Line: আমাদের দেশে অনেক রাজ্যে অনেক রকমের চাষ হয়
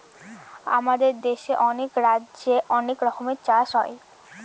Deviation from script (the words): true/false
false